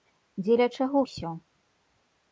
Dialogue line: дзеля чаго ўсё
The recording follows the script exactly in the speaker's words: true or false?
true